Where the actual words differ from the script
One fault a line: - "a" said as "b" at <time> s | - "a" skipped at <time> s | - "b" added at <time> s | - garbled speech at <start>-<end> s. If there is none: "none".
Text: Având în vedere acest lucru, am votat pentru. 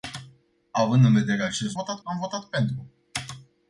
- "lucru" said as "votat" at 1.7 s